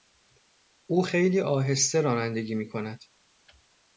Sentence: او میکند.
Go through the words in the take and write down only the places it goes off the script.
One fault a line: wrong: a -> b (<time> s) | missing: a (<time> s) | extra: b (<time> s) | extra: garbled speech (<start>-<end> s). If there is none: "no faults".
extra: خیلی آهسته رانندگی (1.0 s)